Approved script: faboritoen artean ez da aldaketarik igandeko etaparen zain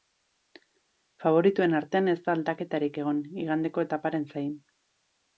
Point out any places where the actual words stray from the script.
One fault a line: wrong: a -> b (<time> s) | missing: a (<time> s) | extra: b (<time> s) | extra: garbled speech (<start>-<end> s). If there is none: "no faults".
extra: egon (3.0 s)